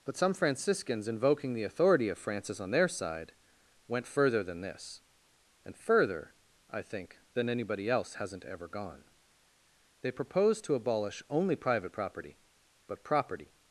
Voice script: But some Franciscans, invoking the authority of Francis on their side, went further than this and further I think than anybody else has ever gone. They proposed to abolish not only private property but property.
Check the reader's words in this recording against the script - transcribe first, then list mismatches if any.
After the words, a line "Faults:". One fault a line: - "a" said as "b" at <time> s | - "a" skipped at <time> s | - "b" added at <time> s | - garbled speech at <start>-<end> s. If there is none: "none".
But some Franciscans, invoking the authority of Francis on their side, went further than this and further I think than anybody else hasn't ever gone. They proposed to abolish only private property but property.
Faults:
- "has" said as "hasn't" at 8.1 s
- "not" skipped at 11.2 s